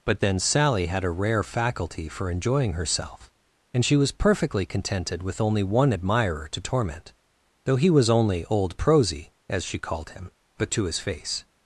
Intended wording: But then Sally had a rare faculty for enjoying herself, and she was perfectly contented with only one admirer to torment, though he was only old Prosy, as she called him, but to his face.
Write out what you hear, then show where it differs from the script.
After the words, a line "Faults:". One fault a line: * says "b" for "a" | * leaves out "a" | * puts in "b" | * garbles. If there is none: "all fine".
But then Sally had a rare faculty for enjoying herself, and she was perfectly contented with only one admirer to torment, though he was only old Prosy, as she called him, but to his face.
Faults:
all fine